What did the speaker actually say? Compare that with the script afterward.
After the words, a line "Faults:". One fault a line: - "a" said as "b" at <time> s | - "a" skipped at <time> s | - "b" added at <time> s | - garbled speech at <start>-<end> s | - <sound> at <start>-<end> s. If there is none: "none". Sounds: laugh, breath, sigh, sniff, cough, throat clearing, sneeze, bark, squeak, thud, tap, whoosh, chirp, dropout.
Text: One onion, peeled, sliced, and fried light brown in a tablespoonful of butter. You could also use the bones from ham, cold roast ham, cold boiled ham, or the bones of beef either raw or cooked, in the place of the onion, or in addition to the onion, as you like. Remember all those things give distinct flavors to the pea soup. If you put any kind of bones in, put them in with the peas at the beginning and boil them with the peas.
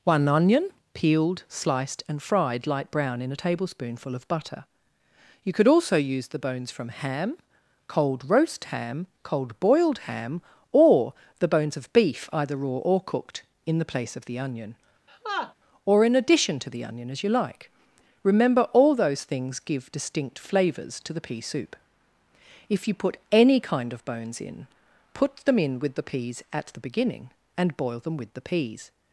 One onion, peeled, sliced, and fried light brown in a tablespoonful of butter. You could also use the bones from ham, cold roast ham, cold boiled ham, or the bones of beef either raw or cooked, in the place of the onion, or in addition to the onion, as you like. Remember all those things give distinct flavors to the pea soup. If you put any kind of bones in, put them in with the peas at the beginning and boil them with the peas.
Faults:
- laugh at 15.1-15.5 s